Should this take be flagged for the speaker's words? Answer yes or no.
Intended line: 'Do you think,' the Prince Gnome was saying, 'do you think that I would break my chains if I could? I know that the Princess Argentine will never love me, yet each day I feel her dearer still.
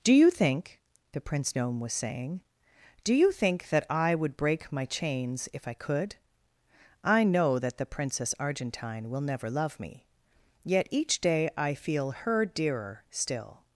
no